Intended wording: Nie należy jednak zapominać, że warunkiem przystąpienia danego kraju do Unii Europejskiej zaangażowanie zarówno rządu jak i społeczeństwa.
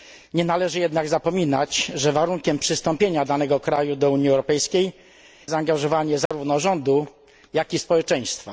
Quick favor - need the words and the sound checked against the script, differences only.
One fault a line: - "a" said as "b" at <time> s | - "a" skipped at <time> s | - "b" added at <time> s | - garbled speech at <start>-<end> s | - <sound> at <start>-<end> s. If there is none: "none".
- dropout at 6.3-6.3 s